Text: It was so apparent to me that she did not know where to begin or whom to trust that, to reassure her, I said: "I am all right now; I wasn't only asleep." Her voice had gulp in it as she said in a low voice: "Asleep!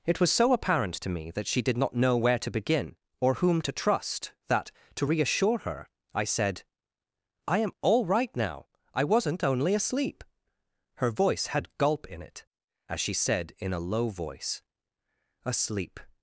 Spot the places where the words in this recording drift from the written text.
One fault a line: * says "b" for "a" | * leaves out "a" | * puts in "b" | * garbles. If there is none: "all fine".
all fine